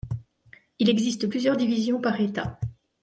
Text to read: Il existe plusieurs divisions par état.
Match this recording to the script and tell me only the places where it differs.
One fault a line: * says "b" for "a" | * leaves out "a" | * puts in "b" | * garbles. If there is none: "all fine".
all fine